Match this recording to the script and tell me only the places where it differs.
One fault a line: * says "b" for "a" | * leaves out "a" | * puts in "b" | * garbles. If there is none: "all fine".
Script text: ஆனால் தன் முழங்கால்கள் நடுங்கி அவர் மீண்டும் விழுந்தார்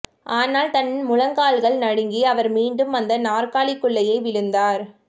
* puts in "அந்த நாற்காலிக்குள்ளேயே"